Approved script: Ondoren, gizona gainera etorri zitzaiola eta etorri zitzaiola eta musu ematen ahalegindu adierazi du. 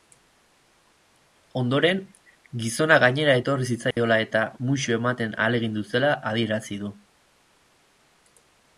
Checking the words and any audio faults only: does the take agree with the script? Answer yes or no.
no